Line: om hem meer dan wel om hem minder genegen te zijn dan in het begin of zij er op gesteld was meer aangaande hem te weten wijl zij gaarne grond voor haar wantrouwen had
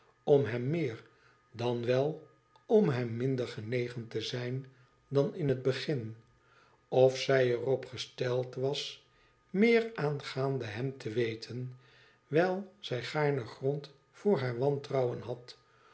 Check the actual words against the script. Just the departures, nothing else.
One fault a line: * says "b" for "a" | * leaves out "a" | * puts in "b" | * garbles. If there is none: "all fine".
all fine